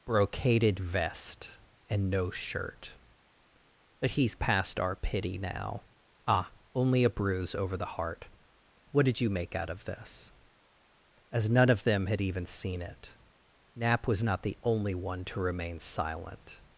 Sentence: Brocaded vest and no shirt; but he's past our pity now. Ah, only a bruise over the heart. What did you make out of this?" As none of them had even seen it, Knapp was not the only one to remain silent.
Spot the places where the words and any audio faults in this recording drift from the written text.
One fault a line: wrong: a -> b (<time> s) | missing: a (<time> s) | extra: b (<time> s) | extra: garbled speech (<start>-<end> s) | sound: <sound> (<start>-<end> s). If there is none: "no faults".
no faults